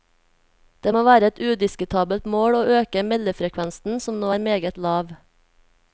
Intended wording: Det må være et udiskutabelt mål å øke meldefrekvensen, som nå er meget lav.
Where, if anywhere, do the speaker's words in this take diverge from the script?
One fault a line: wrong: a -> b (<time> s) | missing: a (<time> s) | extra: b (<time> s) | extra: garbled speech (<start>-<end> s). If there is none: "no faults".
no faults